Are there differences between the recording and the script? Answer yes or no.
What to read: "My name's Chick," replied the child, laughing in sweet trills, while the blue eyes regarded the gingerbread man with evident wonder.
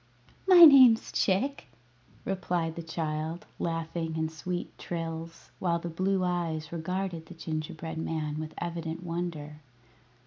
no